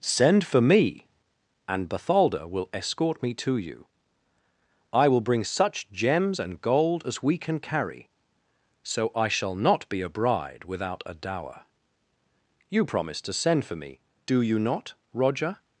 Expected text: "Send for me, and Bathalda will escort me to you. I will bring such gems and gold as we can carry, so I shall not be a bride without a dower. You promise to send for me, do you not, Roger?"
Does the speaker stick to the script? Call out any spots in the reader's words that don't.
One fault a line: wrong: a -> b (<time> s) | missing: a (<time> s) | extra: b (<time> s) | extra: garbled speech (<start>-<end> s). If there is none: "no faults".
no faults